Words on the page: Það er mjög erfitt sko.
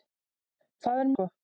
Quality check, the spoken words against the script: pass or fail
fail